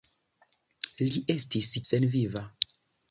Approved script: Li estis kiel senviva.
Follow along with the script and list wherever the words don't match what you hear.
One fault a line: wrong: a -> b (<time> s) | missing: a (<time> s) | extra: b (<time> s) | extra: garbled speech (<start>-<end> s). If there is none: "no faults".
missing: kiel (1.7 s)